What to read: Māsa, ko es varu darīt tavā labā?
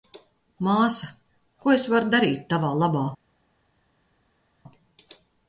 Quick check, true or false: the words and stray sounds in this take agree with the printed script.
true